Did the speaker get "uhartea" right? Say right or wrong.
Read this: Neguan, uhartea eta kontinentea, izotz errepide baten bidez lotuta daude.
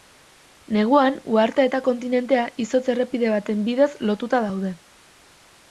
right